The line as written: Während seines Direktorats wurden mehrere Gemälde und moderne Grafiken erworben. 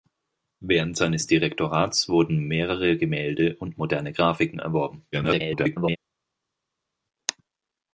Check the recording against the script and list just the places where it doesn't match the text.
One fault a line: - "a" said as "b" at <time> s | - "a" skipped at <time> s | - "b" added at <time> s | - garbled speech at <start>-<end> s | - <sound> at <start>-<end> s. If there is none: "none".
- garbled speech at 5.1-6.0 s